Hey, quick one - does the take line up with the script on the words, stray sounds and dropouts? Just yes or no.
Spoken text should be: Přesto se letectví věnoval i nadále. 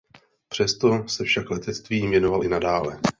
no